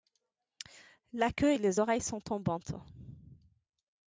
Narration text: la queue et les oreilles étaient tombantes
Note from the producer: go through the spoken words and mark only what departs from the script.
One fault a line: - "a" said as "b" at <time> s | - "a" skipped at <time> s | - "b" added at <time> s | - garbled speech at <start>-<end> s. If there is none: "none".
- "étaient" said as "sont" at 2.0 s